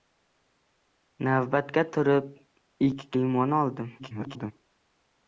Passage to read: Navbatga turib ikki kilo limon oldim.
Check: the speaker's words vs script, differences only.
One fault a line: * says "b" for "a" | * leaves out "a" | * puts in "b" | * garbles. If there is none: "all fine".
* leaves out "kilo"
* garbles